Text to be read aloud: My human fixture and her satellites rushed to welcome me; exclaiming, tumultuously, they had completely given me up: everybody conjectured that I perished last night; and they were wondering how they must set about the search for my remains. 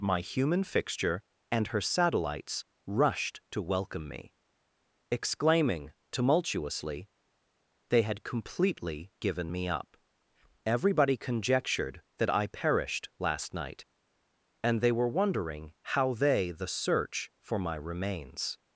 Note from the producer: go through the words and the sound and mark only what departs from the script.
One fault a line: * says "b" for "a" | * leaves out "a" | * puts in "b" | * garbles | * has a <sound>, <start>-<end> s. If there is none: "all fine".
* leaves out "must set about"